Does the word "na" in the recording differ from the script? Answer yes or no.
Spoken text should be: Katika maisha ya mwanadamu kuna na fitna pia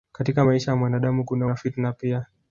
no